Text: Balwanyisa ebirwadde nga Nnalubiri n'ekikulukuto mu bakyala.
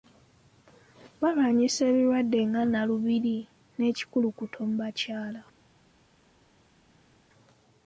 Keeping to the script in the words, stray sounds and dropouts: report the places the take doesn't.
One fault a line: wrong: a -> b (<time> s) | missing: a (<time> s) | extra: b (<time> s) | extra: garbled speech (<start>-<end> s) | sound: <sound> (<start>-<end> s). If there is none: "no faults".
no faults